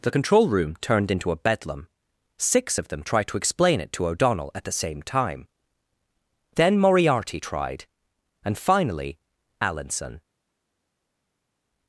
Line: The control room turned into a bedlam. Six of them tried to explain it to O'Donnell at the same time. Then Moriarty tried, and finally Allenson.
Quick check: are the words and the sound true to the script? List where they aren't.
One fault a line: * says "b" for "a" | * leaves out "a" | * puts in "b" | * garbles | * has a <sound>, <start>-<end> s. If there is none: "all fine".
all fine